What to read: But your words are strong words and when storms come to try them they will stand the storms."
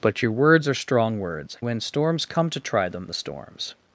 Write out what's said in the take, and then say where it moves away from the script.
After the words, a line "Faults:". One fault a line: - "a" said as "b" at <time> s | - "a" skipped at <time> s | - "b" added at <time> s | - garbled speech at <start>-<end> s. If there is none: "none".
But your words are strong words when storms come to try them the storms."
Faults:
- "and" skipped at 1.6 s
- "they will stand" skipped at 3.1 s